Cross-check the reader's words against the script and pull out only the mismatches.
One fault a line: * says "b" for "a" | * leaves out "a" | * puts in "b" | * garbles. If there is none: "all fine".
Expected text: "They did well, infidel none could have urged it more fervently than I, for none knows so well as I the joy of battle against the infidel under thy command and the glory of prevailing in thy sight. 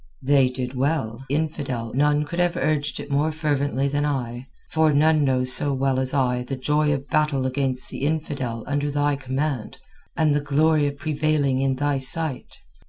all fine